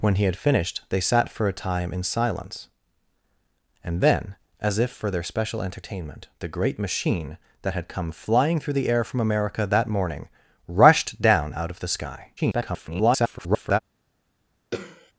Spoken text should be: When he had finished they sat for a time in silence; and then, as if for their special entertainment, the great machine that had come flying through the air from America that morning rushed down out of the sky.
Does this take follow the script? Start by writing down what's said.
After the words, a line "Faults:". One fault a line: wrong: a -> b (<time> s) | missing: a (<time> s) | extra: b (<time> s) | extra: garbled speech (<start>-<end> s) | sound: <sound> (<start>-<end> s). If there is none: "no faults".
When he had finished they sat for a time in silence; and then, as if for their special entertainment, the great machine that had come flying through the air from America that morning rushed down out of the sky. [garbled]
Faults:
extra: garbled speech (12.4-13.8 s)
sound: throat clearing (14.7-15.1 s)